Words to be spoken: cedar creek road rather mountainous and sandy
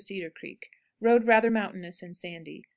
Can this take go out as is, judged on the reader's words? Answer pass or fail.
pass